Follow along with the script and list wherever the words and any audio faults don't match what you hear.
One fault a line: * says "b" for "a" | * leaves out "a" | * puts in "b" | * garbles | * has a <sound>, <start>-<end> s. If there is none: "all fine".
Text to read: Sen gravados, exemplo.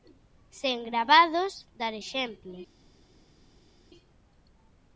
* puts in "dar"